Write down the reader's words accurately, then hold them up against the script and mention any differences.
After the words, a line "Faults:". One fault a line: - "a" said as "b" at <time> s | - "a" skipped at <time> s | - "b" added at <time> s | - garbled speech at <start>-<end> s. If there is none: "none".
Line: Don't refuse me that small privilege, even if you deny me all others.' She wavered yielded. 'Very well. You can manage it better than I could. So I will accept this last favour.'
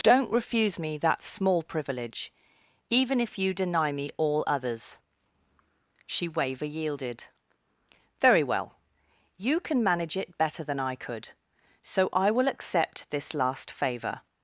Don't refuse me that small privilege, even if you deny me all others.' She waver yielded. 'Very well. You can manage it better than I could. So I will accept this last favour.'
Faults:
- "wavered" said as "waver" at 6.3 s